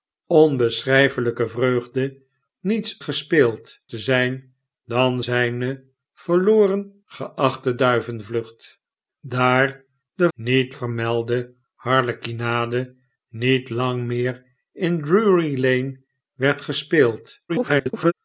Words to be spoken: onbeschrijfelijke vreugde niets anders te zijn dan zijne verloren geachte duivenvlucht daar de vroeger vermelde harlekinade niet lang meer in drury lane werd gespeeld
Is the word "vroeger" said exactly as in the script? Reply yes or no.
no